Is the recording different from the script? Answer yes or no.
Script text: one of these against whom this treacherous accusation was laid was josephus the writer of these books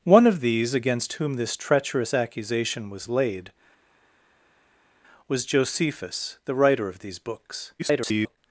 yes